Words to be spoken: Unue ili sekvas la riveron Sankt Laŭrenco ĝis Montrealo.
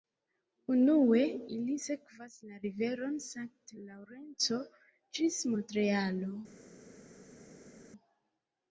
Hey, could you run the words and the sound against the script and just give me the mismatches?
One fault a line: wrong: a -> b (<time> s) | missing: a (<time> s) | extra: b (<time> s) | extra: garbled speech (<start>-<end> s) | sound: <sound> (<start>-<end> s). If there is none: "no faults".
no faults